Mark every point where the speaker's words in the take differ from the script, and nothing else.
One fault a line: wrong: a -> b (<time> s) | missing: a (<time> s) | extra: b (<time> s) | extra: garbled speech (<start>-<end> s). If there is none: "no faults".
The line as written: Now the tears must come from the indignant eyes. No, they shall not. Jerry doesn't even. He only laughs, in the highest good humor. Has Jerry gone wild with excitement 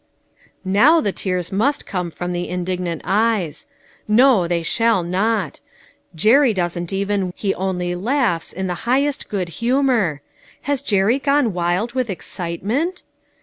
no faults